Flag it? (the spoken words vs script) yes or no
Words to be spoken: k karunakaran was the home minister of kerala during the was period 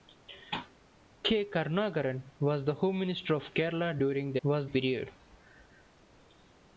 no